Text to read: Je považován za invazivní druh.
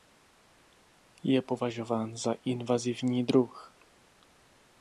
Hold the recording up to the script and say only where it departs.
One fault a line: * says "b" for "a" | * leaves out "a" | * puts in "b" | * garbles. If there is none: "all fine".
all fine